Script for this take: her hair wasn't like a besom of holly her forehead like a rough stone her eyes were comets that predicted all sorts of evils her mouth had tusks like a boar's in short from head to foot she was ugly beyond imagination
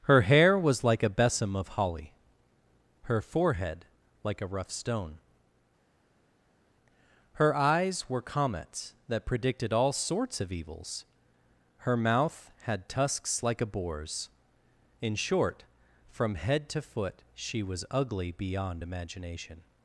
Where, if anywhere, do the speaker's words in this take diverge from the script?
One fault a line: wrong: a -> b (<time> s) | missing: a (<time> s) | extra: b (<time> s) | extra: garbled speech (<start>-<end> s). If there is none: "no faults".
wrong: wasn't -> was (0.6 s)